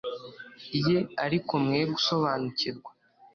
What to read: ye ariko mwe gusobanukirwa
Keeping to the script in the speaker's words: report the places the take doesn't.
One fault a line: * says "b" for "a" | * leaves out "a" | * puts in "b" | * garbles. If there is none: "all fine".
all fine